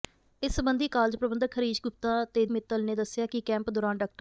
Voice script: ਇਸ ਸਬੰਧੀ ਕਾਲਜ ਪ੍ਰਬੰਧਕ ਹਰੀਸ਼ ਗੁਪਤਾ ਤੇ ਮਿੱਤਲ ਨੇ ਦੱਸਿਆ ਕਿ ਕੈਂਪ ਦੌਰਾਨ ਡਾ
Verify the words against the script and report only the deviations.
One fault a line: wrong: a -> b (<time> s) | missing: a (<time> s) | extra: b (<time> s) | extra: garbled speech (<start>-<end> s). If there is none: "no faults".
no faults